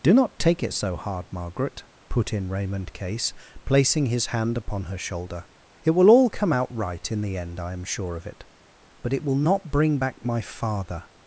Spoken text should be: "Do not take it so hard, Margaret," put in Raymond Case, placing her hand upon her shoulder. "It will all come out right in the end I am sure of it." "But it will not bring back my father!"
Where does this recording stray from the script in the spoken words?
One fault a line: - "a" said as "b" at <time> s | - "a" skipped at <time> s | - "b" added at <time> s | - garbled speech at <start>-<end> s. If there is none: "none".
- "her" said as "his" at 4.1 s